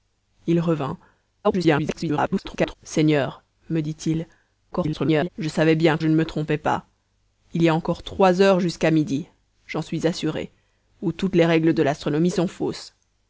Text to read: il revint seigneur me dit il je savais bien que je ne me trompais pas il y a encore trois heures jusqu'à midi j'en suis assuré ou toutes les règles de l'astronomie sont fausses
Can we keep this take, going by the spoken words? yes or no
no